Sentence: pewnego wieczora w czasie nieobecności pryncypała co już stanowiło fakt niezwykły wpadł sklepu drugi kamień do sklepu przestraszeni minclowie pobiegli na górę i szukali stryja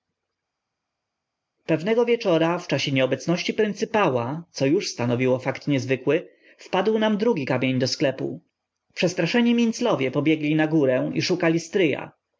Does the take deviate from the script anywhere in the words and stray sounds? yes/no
yes